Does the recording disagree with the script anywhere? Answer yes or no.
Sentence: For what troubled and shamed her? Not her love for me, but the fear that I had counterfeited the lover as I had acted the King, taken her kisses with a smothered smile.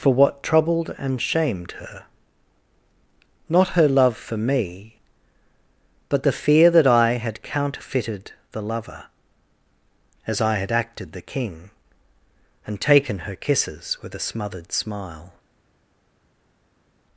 yes